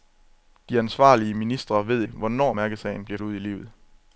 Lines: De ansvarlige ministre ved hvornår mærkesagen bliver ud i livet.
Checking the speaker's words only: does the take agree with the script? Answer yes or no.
yes